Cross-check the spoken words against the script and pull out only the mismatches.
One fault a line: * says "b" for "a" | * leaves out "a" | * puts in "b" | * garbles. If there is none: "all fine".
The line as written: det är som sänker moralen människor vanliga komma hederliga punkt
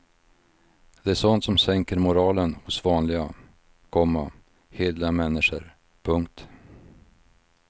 * puts in "sånt"
* says "hos" for "människor"
* puts in "människor"